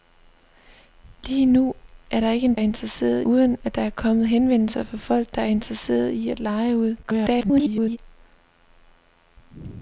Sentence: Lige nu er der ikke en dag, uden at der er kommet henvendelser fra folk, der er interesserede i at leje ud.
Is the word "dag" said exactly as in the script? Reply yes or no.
no